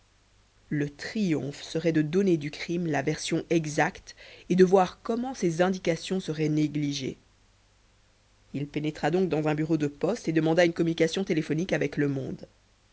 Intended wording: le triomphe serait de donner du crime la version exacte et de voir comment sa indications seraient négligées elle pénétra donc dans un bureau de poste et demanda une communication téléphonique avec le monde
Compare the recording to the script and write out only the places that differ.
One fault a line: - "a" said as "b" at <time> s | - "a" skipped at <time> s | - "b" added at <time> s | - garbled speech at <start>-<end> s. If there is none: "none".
- "sa" said as "ses" at 5.3 s
- "elle" said as "il" at 8.5 s